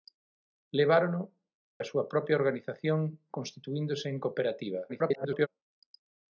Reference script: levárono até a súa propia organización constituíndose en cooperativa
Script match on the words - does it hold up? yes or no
no